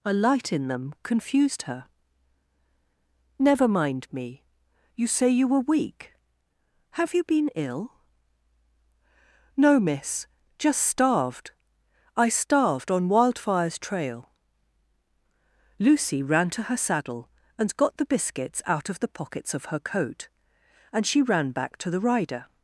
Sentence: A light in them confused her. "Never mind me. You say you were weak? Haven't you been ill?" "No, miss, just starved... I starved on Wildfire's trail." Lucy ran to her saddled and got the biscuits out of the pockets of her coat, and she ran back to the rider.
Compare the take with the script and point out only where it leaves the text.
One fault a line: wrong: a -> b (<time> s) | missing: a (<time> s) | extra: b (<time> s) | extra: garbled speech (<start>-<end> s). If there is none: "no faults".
wrong: Haven't -> Have (7.0 s)
wrong: saddled -> saddle (16.8 s)